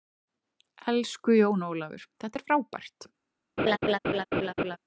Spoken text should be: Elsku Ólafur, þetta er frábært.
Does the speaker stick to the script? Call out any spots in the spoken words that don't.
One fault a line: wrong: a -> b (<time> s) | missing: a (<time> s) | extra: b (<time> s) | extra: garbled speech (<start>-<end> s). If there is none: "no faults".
extra: Jón (1.4 s)